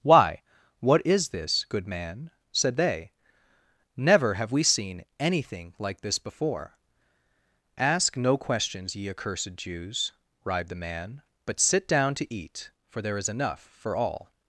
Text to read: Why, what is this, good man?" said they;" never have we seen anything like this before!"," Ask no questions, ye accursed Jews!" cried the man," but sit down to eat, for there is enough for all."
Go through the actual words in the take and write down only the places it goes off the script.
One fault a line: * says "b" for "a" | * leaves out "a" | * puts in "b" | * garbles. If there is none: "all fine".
* says "writhed" for "cried"